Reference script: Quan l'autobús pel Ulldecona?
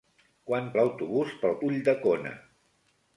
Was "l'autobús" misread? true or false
false